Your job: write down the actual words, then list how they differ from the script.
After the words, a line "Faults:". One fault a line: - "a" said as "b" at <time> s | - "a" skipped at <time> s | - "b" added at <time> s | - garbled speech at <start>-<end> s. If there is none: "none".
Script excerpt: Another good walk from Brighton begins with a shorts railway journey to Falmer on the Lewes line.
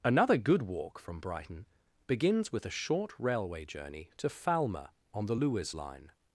Another good walk from Brighton begins with a short railway journey to Falmer on the Lewes line.
Faults:
- "shorts" said as "short" at 2.7 s